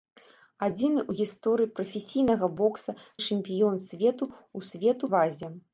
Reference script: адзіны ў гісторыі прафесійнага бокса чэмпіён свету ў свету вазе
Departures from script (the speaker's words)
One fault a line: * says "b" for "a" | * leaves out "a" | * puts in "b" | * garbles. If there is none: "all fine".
all fine